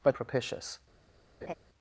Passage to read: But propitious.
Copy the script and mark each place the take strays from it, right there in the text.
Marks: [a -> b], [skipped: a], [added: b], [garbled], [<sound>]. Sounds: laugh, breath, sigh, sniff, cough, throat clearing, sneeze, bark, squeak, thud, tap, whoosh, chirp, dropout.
But propitious. [laugh]